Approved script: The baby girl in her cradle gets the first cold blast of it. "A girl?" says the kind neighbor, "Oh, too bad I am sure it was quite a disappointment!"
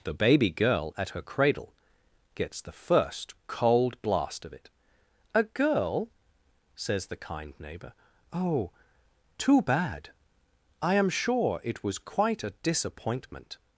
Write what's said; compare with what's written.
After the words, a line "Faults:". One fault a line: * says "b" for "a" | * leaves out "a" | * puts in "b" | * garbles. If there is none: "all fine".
The baby girl at her cradle gets the first cold blast of it. "A girl?" says the kind neighbor, "Oh, too bad I am sure it was quite a disappointment!"
Faults:
* says "at" for "in"